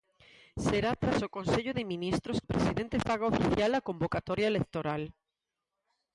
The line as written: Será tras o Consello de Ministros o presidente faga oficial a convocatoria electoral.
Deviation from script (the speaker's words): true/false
false